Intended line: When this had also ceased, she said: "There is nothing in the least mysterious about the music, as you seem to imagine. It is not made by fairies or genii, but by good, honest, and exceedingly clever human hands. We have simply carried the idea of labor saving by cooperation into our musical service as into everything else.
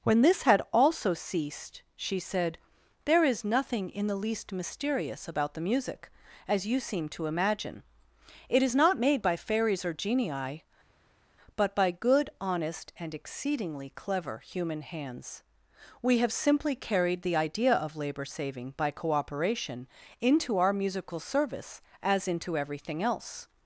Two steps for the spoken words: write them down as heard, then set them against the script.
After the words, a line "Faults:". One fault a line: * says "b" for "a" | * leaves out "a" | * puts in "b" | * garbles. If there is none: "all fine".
When this had also ceased, she said: "There is nothing in the least mysterious about the music, as you seem to imagine. It is not made by fairies or genii, but by good, honest, and exceedingly clever human hands. We have simply carried the idea of labor saving by cooperation into our musical service as into everything else.
Faults:
all fine